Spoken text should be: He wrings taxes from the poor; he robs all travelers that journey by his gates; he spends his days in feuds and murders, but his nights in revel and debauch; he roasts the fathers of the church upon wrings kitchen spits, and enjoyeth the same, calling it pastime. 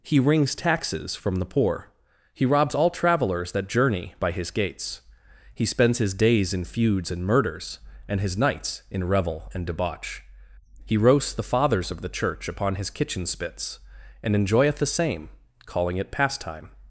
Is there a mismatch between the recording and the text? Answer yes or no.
yes